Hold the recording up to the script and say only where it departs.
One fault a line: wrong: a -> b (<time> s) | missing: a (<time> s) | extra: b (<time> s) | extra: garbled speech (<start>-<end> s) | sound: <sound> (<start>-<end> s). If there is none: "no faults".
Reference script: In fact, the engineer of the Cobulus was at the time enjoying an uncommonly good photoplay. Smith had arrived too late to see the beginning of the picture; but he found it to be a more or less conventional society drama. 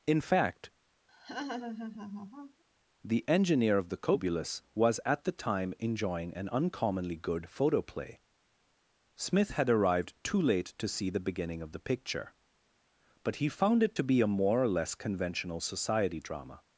sound: laugh (1.1-2.6 s)